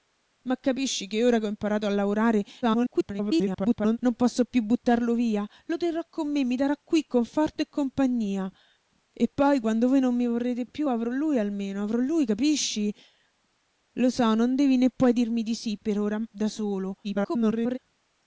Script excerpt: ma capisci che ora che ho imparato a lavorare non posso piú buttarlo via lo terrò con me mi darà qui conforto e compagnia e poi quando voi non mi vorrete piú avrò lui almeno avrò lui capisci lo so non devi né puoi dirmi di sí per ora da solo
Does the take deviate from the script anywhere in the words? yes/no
yes